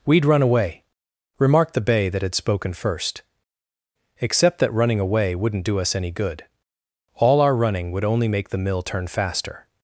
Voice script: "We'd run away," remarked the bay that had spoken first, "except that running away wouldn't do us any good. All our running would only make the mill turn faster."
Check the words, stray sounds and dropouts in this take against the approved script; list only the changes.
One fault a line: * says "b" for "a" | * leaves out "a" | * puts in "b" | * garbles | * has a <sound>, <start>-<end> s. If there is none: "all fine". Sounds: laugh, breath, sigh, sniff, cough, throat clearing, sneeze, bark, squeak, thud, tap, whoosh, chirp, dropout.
all fine